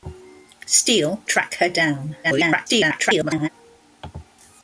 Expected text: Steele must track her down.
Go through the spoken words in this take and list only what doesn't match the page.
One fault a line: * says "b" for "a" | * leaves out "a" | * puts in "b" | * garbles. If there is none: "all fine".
* leaves out "must"
* garbles